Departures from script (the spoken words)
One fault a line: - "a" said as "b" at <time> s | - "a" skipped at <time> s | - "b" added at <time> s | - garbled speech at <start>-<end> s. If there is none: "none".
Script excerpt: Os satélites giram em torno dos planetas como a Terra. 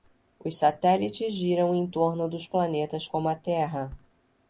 none